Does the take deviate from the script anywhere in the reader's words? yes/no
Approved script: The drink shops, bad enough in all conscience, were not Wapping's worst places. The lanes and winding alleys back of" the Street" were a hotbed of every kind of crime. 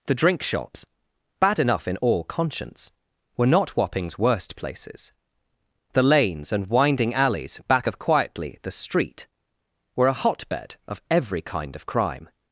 yes